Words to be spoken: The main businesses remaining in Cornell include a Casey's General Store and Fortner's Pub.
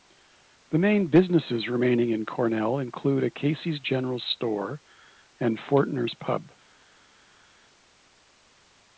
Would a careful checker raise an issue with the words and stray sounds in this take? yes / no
no